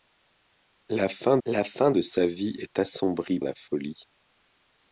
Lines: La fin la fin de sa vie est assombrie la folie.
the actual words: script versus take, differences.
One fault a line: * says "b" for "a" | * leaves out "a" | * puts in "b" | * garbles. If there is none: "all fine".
all fine